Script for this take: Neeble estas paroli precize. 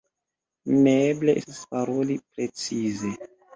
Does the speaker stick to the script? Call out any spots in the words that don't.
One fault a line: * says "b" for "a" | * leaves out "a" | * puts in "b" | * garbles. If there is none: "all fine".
all fine